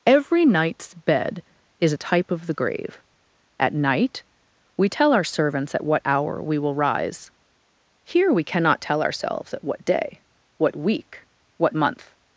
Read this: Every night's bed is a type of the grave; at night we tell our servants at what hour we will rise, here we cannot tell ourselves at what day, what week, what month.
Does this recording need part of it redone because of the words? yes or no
no